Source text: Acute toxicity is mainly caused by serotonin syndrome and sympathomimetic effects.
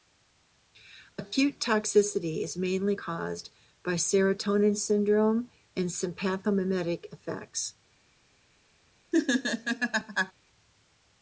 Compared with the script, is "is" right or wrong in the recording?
right